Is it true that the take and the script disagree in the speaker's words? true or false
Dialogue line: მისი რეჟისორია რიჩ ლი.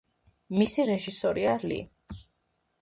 true